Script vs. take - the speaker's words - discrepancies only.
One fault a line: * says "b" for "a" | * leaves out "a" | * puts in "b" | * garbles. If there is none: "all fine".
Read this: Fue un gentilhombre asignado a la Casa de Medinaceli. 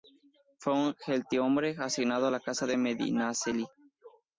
all fine